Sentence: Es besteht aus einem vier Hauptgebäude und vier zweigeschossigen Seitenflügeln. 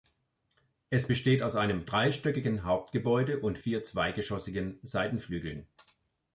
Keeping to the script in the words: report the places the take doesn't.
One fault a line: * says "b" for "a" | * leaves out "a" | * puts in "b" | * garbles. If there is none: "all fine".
* says "dreistöckigen" for "vier"